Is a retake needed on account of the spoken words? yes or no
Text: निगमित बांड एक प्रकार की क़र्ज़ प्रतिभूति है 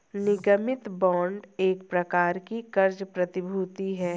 no